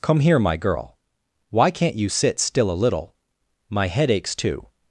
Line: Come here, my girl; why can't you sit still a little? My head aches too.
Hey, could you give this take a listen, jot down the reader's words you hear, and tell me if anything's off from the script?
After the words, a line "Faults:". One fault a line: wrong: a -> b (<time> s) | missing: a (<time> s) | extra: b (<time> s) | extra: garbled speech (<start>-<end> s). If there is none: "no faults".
Come here, my girl; why can't you sit still a little? My head aches too.
Faults:
no faults